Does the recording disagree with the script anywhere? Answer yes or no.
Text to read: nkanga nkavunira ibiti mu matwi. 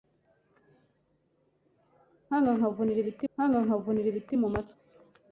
yes